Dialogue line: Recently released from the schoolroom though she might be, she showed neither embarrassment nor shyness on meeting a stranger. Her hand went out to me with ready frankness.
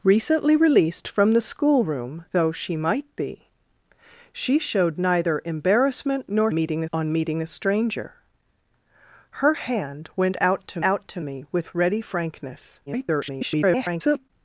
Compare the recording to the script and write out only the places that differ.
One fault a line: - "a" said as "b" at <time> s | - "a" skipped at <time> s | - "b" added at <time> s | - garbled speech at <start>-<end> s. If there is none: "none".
- "shyness" said as "meeting" at 6.5 s
- "out to" added at 10.8 s
- garbled speech at 12.9-14.3 s